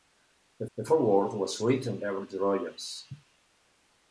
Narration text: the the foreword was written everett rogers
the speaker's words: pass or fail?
pass